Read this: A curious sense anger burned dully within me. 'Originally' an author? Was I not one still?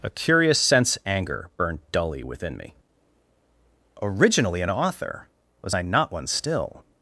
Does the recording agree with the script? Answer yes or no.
yes